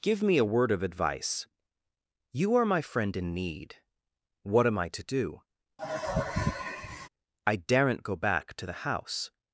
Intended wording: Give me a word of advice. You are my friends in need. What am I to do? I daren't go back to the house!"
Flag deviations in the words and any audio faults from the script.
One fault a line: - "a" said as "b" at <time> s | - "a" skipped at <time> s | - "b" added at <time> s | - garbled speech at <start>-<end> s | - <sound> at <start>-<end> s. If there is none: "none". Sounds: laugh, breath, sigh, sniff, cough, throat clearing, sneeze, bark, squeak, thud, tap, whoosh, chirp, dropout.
- "friends" said as "friend" at 2.8 s
- sigh at 5.8-7.1 s